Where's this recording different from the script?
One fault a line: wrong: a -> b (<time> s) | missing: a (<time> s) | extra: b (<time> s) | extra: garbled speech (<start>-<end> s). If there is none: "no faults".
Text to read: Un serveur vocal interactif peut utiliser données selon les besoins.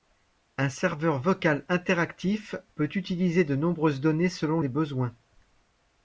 extra: de nombreuses (3.4 s)